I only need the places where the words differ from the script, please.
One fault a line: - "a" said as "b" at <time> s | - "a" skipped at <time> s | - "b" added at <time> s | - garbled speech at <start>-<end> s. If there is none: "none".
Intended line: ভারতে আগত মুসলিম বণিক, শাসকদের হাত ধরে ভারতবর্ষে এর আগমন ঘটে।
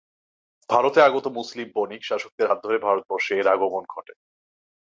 none